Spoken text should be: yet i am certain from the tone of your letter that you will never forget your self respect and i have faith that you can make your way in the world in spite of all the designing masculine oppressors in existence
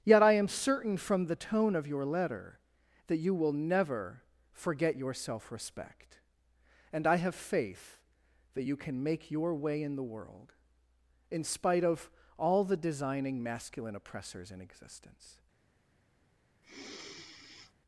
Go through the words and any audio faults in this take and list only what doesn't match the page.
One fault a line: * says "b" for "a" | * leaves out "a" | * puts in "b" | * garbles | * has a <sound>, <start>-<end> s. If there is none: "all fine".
* has a sigh, 16.6-17.7 s